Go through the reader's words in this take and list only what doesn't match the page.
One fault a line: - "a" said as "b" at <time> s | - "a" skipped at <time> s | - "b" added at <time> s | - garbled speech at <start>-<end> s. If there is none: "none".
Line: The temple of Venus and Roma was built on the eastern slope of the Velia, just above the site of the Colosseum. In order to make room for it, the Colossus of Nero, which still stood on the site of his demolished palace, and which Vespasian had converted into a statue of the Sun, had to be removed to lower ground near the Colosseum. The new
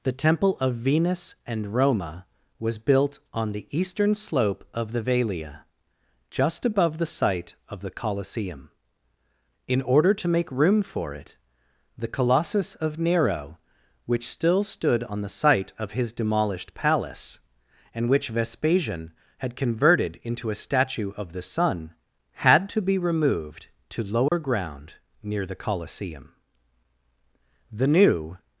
none